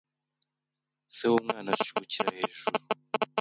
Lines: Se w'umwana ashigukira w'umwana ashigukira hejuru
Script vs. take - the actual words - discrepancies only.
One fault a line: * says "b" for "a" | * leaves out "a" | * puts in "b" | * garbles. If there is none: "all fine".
* leaves out "w'umwana ashigukira"